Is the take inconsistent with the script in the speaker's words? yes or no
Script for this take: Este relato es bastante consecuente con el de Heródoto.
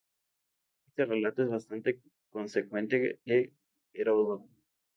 yes